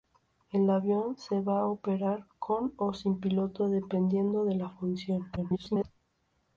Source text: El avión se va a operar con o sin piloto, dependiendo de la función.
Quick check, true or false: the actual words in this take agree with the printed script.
false